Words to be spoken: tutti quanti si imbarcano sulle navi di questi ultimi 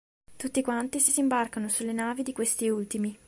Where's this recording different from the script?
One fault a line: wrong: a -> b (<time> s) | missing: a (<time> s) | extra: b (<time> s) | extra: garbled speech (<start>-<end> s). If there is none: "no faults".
extra: si (1.1 s)